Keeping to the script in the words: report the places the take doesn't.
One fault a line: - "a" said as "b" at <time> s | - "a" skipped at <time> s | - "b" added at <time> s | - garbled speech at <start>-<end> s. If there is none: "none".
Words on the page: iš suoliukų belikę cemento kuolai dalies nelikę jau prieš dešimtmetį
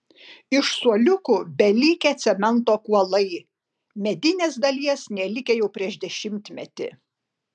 - "medinės" added at 4.1 s